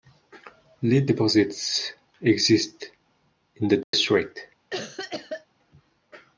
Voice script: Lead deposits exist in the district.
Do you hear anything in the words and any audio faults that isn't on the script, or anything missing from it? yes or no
yes